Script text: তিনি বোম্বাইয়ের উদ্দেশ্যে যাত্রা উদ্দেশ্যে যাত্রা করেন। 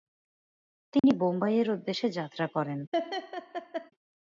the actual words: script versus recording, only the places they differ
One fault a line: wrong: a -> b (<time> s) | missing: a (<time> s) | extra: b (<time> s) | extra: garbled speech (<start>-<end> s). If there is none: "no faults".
missing: উদ্দেশ্যে যাত্রা (2.5 s)